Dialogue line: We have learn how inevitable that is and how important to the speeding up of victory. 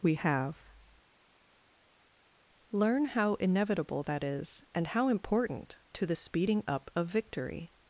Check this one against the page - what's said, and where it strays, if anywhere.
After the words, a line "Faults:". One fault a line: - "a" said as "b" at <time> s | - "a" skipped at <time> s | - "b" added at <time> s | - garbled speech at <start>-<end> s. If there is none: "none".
We have learn how inevitable that is and how important to the speeding up of victory.
Faults:
none